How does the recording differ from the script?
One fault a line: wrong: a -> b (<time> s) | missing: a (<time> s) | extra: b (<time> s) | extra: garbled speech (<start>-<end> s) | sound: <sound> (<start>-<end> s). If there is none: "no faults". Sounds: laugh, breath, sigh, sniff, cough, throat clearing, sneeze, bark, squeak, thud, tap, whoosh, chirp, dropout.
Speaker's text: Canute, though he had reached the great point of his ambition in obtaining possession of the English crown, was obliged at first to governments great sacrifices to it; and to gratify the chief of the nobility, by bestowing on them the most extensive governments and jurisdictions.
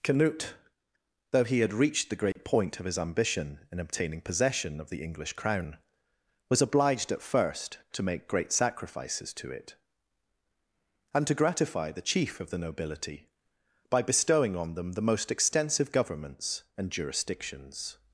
sound: dropout (2.3-2.4 s)
wrong: governments -> make (8.0 s)